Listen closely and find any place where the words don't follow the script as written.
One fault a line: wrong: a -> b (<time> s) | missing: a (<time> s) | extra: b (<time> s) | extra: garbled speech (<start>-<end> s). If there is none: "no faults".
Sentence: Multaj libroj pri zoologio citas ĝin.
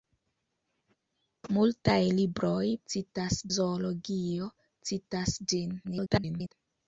wrong: pri -> citas (2.9 s)
extra: garbled speech (5.8-6.5 s)